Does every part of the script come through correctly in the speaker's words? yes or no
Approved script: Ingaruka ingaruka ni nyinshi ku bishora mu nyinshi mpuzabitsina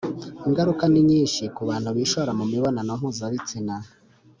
no